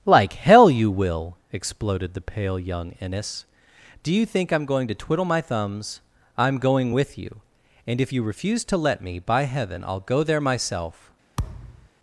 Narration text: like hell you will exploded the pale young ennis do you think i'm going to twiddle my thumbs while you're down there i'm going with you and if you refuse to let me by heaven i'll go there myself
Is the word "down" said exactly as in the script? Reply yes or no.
no